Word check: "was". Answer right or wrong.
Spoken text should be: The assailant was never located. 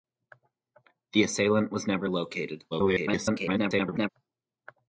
right